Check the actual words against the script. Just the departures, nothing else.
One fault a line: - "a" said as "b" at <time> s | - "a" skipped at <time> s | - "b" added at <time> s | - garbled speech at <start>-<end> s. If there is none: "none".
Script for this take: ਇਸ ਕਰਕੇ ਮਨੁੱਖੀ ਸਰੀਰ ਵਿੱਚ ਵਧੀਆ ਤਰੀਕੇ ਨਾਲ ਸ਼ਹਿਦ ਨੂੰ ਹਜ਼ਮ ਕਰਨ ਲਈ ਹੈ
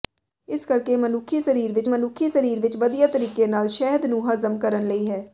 - "ਮਨੁੱਖੀ ਸਰੀਰ ਵਿੱਚ" added at 1.8 s